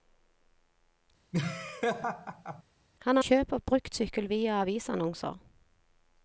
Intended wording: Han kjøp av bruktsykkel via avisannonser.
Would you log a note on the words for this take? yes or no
no